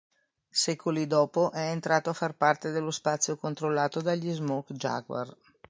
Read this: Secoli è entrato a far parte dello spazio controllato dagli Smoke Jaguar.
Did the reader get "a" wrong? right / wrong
right